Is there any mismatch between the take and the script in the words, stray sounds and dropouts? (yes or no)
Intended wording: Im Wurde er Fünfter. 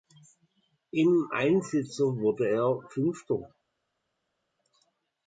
yes